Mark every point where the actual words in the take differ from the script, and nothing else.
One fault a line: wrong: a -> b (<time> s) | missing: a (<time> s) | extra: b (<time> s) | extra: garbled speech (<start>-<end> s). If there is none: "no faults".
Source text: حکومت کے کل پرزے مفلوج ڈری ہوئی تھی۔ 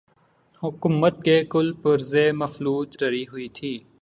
no faults